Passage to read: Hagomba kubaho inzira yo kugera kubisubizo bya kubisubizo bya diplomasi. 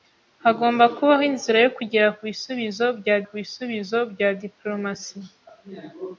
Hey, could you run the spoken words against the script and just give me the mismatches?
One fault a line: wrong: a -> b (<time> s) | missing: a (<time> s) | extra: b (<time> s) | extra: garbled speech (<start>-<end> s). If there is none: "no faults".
no faults